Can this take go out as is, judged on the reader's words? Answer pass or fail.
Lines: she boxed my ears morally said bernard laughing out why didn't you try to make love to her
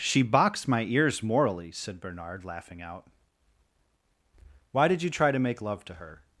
fail